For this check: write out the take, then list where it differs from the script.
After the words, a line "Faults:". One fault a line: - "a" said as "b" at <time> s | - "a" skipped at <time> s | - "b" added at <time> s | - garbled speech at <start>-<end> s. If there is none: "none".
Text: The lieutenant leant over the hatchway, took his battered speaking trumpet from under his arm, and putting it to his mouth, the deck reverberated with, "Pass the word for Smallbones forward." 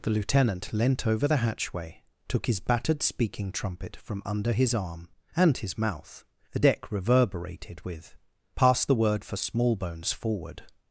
The lieutenant leant over the hatchway, took his battered speaking trumpet from under his arm, and his mouth, the deck reverberated with, "Pass the word for Smallbones forward."
Faults:
- "putting it to" skipped at 5.6 s